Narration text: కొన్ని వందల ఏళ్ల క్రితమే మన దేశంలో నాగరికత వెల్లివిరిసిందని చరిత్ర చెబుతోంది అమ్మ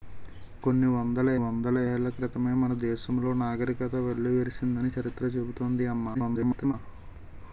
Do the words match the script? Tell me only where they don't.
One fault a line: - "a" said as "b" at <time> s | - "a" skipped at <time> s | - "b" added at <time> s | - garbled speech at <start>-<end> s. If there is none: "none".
- "వందల" added at 1.3 s
- garbled speech at 6.1-6.7 s